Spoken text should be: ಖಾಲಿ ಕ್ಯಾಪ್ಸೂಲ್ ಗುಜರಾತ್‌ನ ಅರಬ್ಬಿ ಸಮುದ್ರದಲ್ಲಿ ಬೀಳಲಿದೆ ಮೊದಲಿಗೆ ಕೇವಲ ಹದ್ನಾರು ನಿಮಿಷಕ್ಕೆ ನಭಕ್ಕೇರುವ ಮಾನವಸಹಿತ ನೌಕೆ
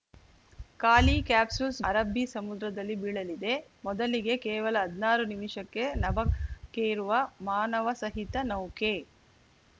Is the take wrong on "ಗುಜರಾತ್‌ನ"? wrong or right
wrong